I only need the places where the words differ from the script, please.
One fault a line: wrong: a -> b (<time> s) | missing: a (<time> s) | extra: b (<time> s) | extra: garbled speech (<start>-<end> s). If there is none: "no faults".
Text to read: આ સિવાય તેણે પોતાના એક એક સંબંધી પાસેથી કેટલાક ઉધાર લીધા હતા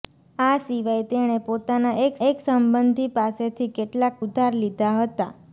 no faults